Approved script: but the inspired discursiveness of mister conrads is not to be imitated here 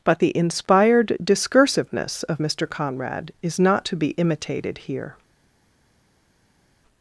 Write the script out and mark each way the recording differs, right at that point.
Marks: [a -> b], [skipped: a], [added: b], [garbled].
but the inspired discursiveness of mister [conrads -> conrad] is not to be imitated here